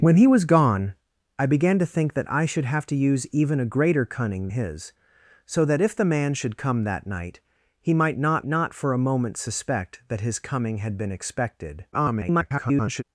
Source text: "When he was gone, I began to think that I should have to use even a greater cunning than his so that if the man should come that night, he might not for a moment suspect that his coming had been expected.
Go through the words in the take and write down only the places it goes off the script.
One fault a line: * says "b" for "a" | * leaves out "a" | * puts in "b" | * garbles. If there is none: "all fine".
* leaves out "than"
* puts in "not"
* garbles